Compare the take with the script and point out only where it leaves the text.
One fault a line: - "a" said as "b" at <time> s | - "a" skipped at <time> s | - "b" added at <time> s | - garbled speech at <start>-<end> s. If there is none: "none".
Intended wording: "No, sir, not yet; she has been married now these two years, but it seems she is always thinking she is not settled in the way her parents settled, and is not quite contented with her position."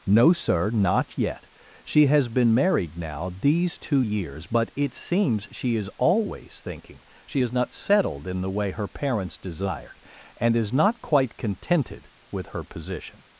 - "settled" said as "desired" at 9.4 s